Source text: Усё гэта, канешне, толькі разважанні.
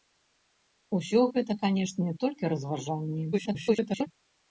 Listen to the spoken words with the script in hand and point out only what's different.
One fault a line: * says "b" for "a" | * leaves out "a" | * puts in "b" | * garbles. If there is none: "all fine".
* garbles